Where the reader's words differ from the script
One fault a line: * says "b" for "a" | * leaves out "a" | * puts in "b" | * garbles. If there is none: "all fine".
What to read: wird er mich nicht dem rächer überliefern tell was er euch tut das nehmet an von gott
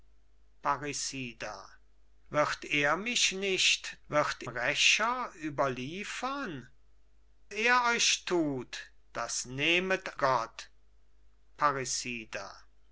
* says "wird" for "dem"
* leaves out "tell was"
* leaves out "an von"